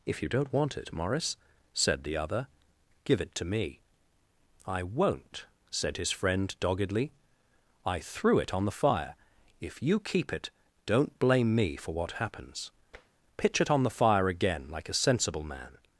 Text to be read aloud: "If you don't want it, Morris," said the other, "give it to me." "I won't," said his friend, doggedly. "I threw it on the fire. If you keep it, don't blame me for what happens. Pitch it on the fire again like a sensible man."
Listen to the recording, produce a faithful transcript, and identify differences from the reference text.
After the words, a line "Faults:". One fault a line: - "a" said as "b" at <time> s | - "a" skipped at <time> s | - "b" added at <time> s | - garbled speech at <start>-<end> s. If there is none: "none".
"If you don't want it, Morris," said the other, "give it to me." "I won't," said his friend, doggedly. "I threw it on the fire. If you keep it, don't blame me for what happens. Pitch it on the fire again like a sensible man."
Faults:
none